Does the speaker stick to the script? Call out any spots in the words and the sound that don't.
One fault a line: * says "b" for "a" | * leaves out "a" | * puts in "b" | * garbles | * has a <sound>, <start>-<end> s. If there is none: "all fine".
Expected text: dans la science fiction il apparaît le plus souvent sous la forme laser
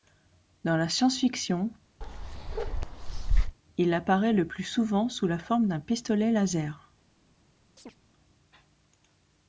* has a bark, 2.0-3.6 s
* puts in "d'un pistolet"
* has a chirp, 7.8-8.0 s